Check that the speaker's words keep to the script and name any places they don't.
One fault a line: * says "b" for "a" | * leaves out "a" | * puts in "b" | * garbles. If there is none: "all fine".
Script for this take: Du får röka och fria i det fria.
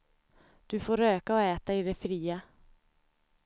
* says "äta" for "fria"